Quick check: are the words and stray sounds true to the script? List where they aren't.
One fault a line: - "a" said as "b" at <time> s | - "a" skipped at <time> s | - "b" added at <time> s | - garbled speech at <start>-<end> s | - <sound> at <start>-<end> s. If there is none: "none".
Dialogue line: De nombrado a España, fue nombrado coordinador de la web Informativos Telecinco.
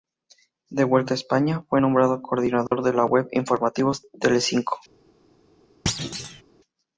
- "nombrado" said as "vuelta" at 0.8 s
- dropout at 2.7-2.7 s
- thud at 5.9-6.4 s